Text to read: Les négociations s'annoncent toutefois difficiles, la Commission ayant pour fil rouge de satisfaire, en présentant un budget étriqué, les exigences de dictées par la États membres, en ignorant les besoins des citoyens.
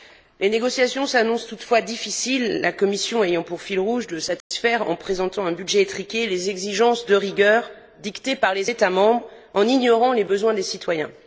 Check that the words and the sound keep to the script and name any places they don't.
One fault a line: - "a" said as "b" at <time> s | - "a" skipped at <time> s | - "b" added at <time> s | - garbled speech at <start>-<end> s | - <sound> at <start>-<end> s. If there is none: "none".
- dropout at 4.4-4.5 s
- "rigueur" added at 7.2 s
- "la" said as "les" at 8.6 s